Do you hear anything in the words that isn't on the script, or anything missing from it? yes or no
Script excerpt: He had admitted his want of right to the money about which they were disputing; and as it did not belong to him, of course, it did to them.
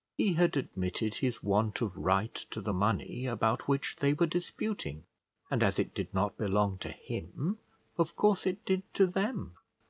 no